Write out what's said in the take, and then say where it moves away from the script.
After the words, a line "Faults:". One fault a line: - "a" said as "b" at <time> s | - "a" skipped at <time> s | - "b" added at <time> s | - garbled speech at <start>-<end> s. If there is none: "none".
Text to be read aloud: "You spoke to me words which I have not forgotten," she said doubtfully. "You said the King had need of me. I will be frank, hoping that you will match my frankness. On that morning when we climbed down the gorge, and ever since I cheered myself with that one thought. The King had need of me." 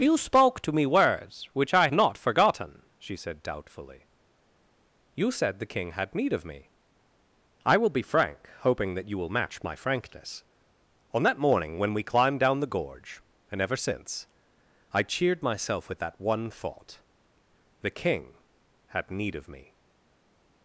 "You spoke to me words which I not forgotten," she said doubtfully. "You said the King had need of me. I will be frank, hoping that you will match my frankness. On that morning when we climbed down the gorge, and ever since I cheered myself with that one thought. The King had need of me."
Faults:
- "have" skipped at 1.9 s